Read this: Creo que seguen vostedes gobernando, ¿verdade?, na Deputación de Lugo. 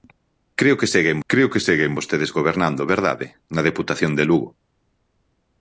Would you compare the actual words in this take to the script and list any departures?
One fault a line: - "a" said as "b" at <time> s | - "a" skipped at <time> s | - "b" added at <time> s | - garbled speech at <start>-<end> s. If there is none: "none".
- "creo que seguen" added at 1.3 s